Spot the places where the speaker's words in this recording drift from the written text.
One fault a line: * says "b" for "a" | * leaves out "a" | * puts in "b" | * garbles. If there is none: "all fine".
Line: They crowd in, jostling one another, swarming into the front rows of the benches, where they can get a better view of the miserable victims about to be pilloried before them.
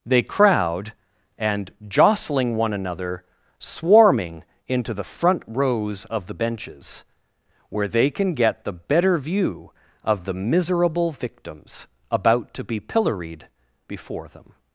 * says "and" for "in"
* says "the" for "a"